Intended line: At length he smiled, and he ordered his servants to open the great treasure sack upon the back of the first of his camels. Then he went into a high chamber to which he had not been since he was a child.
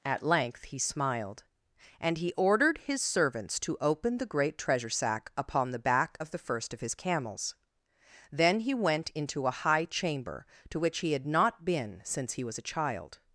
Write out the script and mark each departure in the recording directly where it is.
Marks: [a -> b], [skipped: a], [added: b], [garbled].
At length he smiled, and he ordered his servants to open the great treasure sack upon the back of the first of his camels. Then he went into a high chamber to which he had not been since he was a child.